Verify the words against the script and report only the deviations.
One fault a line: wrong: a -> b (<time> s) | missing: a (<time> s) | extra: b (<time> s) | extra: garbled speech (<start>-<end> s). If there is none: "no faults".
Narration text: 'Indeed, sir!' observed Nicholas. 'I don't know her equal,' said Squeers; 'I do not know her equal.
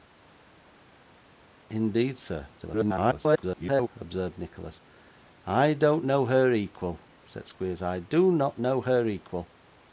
extra: garbled speech (2.6-3.9 s)